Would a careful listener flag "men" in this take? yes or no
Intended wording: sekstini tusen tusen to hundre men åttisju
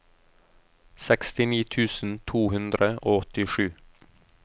yes